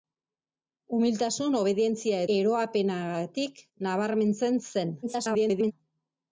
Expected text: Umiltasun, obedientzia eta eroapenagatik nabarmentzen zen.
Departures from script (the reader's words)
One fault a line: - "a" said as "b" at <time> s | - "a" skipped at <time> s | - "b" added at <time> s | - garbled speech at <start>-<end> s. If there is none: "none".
- "eta" skipped at 2.2 s
- garbled speech at 5.0-5.7 s